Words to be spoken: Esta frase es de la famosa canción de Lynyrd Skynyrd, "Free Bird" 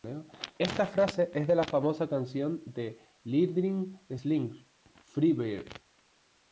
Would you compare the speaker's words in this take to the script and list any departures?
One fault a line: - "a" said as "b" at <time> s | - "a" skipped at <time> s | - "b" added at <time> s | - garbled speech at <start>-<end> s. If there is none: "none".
none